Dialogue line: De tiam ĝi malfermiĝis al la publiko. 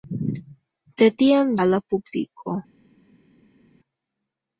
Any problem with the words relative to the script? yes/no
yes